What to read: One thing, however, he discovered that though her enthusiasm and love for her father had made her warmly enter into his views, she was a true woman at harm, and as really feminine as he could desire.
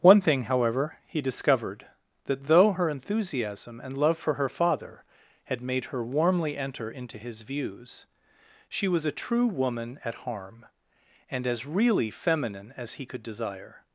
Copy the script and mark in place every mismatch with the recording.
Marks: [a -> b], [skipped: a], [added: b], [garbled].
One thing, however, he discovered that though her enthusiasm and love for her father had made her warmly enter into his views, she was a true woman at harm, and as really feminine as he could desire.